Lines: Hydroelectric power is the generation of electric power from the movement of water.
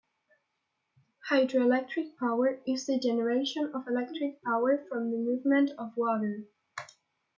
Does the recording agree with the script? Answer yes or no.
yes